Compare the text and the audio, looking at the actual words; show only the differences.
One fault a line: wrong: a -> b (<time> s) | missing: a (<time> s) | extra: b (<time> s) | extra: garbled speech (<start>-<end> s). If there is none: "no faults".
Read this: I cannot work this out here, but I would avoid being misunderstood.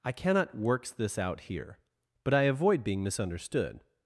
wrong: work -> works (0.6 s)
missing: would (2.4 s)